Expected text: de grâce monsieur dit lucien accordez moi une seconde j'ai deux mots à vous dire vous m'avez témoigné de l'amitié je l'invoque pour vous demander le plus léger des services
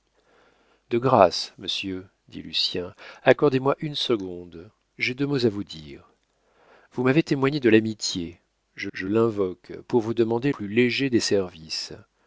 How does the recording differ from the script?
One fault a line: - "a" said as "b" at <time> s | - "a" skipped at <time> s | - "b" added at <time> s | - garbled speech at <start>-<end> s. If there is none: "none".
- "je" added at 8.9 s
- "le" skipped at 10.5 s